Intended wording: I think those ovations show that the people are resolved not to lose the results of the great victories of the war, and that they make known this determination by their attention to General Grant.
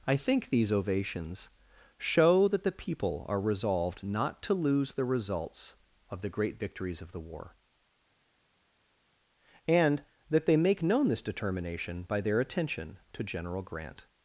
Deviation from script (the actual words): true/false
true